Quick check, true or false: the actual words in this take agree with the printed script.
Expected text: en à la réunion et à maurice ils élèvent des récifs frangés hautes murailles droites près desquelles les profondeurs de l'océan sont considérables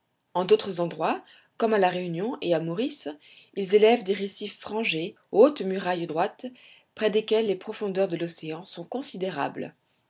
false